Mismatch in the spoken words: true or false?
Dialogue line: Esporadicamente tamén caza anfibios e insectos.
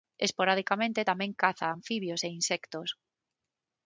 false